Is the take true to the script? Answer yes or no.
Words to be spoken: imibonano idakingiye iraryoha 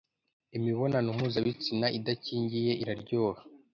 no